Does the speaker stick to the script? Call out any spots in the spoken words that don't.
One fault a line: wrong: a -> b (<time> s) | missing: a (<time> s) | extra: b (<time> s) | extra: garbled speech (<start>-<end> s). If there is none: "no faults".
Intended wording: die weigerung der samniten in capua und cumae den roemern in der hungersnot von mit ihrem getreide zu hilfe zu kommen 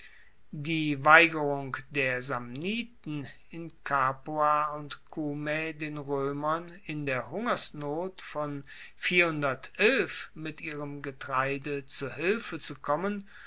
no faults